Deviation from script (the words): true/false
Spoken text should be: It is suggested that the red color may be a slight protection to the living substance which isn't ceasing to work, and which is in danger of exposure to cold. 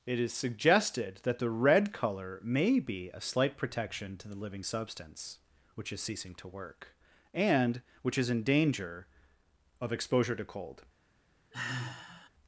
true